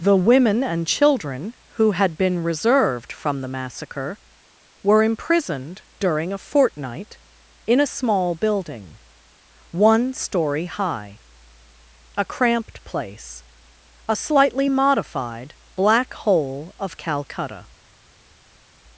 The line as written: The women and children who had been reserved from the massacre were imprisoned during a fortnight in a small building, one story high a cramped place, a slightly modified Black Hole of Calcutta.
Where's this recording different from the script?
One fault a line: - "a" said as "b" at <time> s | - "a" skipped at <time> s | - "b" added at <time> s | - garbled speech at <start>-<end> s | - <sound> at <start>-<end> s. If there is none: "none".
none